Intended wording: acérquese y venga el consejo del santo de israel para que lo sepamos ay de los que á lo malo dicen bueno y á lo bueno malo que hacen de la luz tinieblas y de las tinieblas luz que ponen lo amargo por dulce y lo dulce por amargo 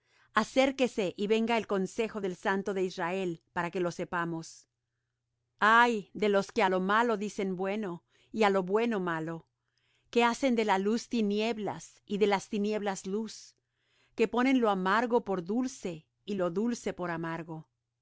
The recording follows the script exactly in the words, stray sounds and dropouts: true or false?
true